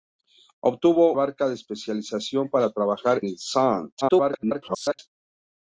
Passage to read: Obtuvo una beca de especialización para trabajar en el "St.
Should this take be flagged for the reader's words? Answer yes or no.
yes